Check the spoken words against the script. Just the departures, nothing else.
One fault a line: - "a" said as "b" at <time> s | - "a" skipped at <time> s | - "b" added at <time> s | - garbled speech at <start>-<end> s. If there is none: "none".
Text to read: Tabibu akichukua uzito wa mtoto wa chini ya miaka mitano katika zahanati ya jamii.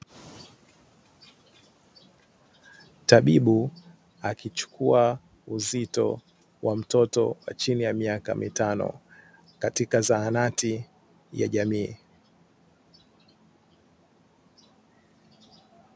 none